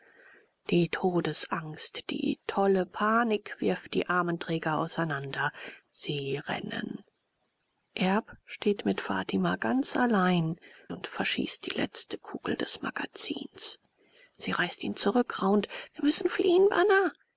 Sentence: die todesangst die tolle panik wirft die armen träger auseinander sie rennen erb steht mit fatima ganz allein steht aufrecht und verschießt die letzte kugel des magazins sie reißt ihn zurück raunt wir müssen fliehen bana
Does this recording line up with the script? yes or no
no